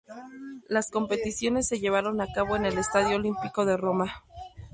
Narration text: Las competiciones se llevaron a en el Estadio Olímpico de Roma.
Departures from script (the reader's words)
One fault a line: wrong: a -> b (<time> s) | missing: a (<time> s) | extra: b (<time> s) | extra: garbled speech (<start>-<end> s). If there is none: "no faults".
extra: cabo (2.3 s)